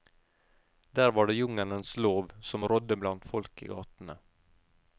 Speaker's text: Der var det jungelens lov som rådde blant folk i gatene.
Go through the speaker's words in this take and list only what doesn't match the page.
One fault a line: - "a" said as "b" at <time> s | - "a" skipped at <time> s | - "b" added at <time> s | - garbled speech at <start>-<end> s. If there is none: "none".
none